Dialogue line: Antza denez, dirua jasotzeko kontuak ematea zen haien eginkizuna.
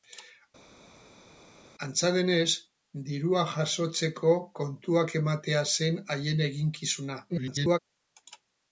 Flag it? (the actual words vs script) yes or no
yes